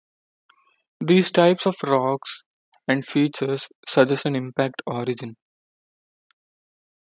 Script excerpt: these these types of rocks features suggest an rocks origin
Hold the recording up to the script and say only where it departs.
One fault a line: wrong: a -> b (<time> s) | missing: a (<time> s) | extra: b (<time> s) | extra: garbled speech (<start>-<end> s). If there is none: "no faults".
missing: these (1.3 s)
extra: and (2.9 s)
wrong: rocks -> impact (4.3 s)